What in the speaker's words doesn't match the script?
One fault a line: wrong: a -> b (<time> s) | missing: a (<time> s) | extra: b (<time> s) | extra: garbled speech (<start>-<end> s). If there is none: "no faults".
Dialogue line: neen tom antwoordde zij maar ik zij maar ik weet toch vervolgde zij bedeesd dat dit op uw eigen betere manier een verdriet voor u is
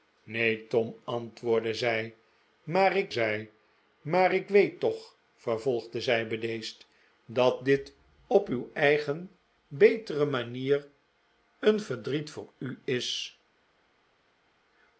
no faults